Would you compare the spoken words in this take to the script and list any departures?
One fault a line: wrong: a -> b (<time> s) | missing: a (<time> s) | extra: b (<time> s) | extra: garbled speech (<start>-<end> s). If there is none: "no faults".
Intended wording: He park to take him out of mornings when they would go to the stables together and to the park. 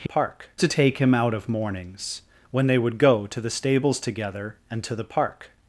no faults